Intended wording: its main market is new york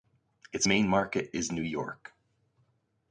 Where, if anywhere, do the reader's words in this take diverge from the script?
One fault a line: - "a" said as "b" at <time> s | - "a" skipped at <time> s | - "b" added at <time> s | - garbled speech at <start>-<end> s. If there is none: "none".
none